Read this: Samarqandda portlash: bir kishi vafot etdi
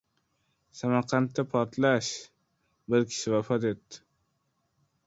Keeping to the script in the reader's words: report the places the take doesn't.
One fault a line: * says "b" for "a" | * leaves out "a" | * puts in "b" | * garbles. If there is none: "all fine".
all fine